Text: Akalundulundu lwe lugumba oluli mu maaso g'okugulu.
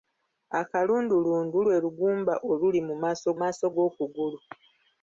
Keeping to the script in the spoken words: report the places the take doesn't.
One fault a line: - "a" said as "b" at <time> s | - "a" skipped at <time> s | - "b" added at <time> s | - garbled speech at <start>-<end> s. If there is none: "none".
- "maaso" added at 3.4 s